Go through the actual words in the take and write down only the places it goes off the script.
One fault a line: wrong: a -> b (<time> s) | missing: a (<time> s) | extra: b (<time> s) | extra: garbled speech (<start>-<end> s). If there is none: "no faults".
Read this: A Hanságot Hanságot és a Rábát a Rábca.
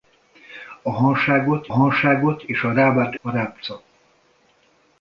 no faults